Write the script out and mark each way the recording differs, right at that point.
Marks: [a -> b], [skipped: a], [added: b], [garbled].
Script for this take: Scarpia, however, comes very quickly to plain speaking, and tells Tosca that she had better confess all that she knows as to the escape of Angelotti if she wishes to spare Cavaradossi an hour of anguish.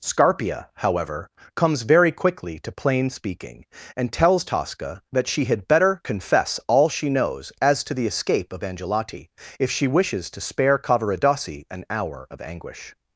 Scarpia, however, comes very quickly to plain speaking, and tells Tosca that she had better confess all [skipped: that] she knows as to the escape of Angelotti if she wishes to spare Cavaradossi an hour of anguish.